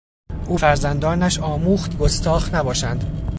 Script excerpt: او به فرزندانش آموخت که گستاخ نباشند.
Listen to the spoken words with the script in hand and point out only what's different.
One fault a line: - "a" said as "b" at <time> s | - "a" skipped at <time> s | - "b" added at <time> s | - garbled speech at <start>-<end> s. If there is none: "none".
- "به" skipped at 0.6 s
- "که" skipped at 2.0 s